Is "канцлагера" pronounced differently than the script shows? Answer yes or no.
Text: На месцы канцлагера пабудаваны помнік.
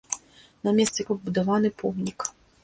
yes